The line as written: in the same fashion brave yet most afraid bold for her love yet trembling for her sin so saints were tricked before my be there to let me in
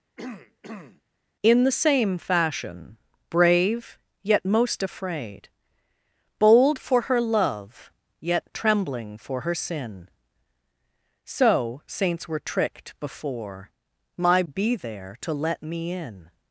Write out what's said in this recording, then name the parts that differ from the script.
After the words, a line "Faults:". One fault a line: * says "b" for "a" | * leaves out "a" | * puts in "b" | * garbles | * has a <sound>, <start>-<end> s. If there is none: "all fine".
in the same fashion brave yet most afraid bold for her love yet trembling for her sin so saints were tricked before my be there to let me in
Faults:
* has a throat clearing, 0.2-1.0 s